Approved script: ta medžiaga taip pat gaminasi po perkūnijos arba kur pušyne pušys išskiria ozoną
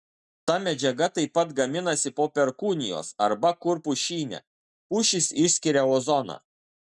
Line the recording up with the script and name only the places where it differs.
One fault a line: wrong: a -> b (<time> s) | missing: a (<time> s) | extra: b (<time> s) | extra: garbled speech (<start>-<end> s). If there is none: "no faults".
no faults